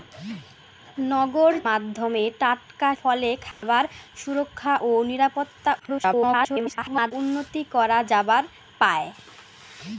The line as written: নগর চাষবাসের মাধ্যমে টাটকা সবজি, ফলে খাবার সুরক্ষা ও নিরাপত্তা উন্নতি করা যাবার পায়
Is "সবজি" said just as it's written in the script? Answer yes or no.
no